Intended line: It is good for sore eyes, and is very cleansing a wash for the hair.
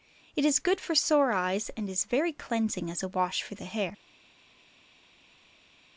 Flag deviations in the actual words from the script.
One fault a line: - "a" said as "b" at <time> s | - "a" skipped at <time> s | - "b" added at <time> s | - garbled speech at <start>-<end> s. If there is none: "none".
- "as" added at 2.9 s